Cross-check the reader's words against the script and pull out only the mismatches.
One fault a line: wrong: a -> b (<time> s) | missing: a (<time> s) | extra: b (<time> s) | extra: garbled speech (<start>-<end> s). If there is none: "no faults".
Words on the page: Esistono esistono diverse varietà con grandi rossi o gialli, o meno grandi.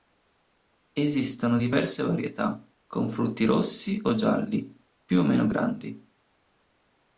missing: esistono (1.6 s)
wrong: grandi -> frutti (3.1 s)
extra: più (5.1 s)